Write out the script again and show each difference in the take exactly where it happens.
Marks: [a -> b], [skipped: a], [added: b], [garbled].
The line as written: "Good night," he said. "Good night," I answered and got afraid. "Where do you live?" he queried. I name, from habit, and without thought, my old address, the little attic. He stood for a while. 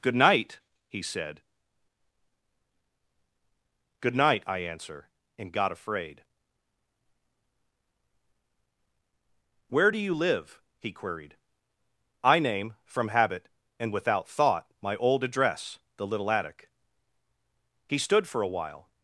"Good night," he said. "Good night," I [answered -> answer] and got afraid. "Where do you live?" he queried. I name, from habit, and without thought, my old address, the little attic. He stood for a while.